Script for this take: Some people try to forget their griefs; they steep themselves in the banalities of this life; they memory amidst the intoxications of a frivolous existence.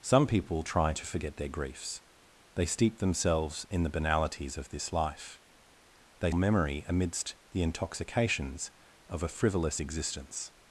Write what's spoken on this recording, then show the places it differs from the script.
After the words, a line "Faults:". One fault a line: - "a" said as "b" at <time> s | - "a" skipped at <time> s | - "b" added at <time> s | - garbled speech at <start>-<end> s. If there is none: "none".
Some people try to forget their griefs; they steep themselves in the banalities of this life; they memory amidst the intoxications of a frivolous existence.
Faults:
none